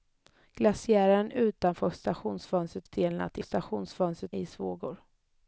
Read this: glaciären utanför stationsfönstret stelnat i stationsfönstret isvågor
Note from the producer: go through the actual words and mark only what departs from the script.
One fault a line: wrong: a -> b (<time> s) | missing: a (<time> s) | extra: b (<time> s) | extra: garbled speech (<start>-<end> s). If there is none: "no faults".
no faults